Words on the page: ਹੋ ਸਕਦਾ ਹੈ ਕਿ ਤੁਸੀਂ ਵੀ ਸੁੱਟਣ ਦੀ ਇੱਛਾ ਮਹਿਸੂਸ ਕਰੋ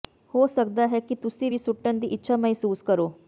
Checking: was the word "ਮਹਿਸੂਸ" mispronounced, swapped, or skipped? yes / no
no